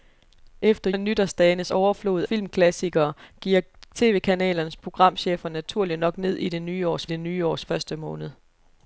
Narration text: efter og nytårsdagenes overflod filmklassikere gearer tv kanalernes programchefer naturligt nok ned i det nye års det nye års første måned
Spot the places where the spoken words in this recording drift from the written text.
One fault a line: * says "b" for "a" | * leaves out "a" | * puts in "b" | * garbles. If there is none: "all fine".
all fine